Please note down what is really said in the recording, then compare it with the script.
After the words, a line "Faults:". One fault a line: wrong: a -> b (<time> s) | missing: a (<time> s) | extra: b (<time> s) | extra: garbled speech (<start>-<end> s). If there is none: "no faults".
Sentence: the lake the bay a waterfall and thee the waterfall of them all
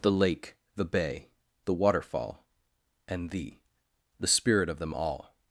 the lake the bay the waterfall and thee the spirit of them all
Faults:
wrong: a -> the (1.6 s)
wrong: waterfall -> spirit (4.3 s)